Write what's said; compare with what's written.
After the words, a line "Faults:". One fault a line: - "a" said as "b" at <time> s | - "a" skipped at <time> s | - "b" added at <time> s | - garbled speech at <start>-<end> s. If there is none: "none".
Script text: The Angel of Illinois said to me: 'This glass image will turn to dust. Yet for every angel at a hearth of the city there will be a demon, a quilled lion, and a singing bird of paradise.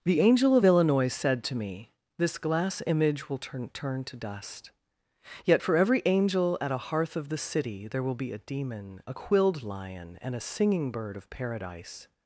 The Angel of Illinois said to me: 'This glass image will turn turn to dust. Yet for every angel at a hearth of the city there will be a demon, a quilled lion, and a singing bird of paradise.
Faults:
- "turn" added at 3.7 s